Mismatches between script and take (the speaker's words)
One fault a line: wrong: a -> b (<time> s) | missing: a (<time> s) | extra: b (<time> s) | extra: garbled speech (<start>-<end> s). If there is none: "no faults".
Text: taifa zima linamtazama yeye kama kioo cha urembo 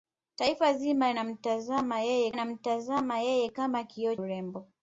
extra: linamtazama yeye (2.3 s)
missing: cha (4.2 s)